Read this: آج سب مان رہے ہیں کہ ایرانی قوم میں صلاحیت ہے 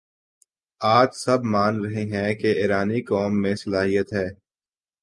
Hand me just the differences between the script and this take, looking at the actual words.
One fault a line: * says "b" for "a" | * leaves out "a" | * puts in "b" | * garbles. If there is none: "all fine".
all fine